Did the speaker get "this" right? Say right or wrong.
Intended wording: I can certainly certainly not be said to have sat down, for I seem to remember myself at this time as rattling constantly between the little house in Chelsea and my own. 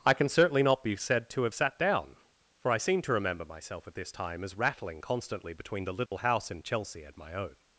right